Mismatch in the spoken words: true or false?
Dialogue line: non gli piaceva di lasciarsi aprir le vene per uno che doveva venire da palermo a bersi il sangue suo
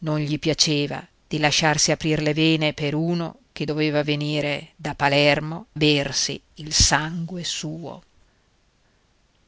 true